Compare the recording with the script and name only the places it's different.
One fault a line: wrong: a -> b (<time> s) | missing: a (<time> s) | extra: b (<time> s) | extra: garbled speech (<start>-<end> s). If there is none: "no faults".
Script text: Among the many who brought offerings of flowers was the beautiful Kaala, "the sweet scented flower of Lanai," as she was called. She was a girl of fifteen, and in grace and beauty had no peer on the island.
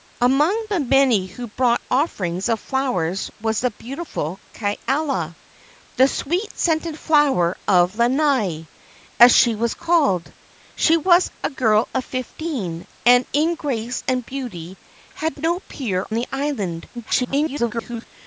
missing: on (16.1 s)
extra: garbled speech (16.9-18.1 s)